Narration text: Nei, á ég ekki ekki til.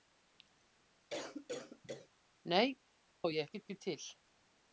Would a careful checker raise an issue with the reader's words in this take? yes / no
no